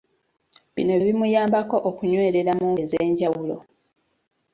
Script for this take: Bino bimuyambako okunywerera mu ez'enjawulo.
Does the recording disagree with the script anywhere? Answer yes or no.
no